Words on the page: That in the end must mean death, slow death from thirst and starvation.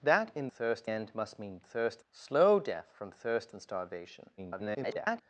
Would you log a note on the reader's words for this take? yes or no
yes